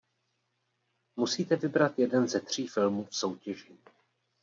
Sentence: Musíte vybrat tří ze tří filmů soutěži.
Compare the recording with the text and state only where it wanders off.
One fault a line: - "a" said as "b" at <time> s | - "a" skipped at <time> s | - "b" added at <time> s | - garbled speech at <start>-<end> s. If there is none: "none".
- "tří" said as "jeden" at 2.0 s
- "v" added at 3.0 s